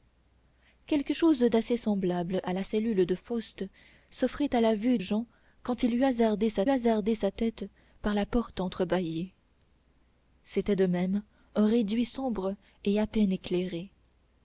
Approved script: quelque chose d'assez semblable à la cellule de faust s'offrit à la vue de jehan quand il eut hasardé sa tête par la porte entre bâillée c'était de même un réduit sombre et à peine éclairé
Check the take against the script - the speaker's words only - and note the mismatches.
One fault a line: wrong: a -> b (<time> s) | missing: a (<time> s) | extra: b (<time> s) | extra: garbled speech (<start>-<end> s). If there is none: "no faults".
missing: de (5.0 s)
extra: hasardé sa (6.7 s)